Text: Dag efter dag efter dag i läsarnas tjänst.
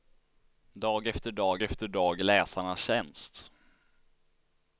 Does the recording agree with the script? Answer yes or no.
yes